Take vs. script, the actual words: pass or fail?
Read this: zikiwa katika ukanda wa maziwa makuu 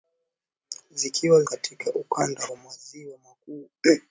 pass